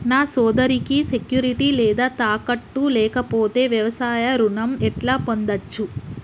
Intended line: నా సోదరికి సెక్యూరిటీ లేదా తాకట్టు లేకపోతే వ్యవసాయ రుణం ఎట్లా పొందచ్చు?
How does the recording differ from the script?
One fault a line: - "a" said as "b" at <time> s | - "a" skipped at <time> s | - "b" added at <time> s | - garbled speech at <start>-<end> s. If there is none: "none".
none